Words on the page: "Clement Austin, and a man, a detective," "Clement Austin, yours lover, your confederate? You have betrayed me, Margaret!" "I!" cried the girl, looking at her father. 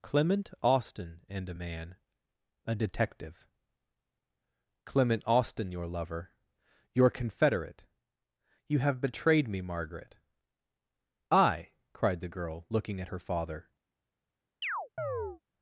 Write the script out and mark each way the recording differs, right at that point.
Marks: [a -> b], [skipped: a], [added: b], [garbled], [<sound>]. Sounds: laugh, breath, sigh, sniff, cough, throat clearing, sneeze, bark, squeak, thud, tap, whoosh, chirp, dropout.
"Clement Austin, and a man, a detective," "Clement Austin, [yours -> your] lover, your confederate? You have betrayed me, Margaret!" "I!" cried the girl, looking at her father. [chirp]